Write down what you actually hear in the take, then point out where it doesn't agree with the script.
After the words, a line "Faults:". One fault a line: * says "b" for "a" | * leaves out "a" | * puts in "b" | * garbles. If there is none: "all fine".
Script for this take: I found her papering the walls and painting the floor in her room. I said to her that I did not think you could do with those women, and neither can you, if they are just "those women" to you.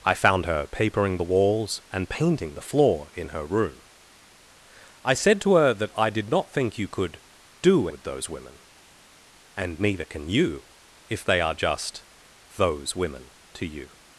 I found her papering the walls and painting the floor in her room. I said to her that I did not think you could do with those women, and neither can you, if they are just "those women" to you.
Faults:
all fine